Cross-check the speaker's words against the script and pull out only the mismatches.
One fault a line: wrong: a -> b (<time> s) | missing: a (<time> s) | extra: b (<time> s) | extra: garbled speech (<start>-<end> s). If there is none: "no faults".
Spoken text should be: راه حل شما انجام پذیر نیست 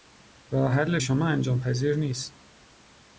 no faults